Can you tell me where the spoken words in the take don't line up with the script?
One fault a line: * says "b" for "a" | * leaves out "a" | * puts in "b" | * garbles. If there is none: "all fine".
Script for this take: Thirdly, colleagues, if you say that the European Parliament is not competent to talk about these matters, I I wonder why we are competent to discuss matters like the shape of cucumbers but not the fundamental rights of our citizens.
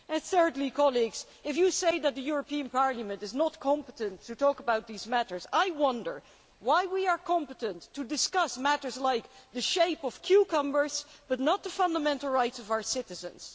* leaves out "I"